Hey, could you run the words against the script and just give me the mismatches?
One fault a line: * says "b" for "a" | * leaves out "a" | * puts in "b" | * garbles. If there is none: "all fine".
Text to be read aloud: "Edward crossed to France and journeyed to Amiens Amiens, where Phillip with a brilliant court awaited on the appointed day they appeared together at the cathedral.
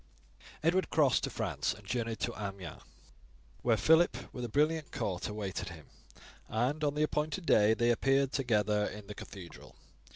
* leaves out "Amiens"
* puts in "him and"
* says "in" for "at"